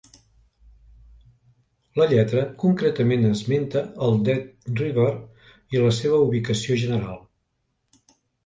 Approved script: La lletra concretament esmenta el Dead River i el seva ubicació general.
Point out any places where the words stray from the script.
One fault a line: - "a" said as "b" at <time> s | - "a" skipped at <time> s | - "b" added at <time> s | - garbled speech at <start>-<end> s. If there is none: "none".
- "el" said as "la" at 5.8 s